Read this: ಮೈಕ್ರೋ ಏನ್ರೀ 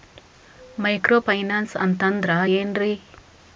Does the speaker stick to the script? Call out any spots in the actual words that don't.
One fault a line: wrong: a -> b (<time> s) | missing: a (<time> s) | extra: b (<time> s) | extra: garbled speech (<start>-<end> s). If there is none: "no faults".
extra: ಫೈನಾನ್ಸ್ ಅಂತಂದ್ರ (1.2 s)